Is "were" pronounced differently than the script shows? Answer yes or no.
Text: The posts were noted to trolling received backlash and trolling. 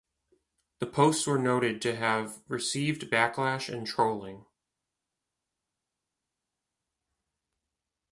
no